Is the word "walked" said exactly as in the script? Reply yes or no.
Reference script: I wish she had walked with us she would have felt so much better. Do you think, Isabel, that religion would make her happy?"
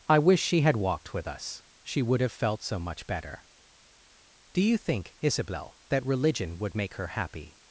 yes